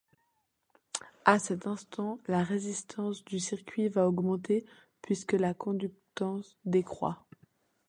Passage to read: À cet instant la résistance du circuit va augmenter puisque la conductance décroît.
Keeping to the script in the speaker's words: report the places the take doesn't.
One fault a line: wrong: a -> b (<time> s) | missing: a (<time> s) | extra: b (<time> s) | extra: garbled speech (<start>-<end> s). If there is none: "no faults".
no faults